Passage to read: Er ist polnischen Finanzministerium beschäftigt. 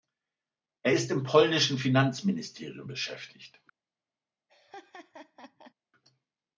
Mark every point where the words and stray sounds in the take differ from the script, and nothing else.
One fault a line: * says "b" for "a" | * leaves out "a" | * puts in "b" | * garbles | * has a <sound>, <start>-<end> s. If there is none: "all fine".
* puts in "im"
* has a laugh, 4.5-5.7 s